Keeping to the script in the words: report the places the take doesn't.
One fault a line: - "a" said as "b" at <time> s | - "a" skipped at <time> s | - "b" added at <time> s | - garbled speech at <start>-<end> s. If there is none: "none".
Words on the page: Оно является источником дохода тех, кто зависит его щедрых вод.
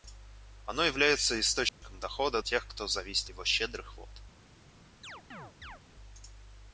none